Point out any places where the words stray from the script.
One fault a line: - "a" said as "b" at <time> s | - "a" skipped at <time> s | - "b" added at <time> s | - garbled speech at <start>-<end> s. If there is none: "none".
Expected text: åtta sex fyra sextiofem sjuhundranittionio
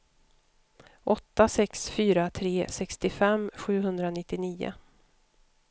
- "tre" added at 2.3 s